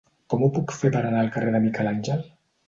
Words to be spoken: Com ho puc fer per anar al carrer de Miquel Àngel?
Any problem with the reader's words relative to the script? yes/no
no